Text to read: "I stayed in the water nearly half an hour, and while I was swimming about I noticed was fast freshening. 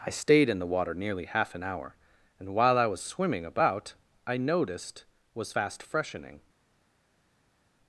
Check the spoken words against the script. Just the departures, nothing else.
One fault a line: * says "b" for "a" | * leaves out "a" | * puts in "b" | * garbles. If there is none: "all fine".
all fine